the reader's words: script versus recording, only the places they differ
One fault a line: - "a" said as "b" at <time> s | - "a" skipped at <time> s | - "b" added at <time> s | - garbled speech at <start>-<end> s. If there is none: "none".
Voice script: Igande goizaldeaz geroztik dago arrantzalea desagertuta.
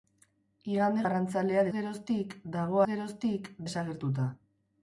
- "goizaldeaz" said as "arrantzalea" at 1.0 s
- "arrantzalea" said as "geroztik" at 2.9 s